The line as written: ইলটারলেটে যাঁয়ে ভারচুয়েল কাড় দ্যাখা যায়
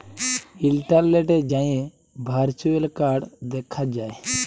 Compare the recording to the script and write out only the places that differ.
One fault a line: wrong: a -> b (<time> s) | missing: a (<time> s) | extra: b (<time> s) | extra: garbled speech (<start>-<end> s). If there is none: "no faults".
no faults